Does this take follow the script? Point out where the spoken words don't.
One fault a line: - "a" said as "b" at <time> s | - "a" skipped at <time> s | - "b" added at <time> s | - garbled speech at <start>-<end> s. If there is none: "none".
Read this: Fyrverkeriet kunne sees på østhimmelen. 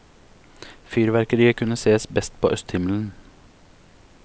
- "best" added at 2.1 s